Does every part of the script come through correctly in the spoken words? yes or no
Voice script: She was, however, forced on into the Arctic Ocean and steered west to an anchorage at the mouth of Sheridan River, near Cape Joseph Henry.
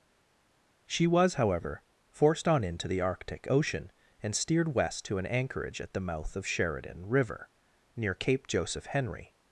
yes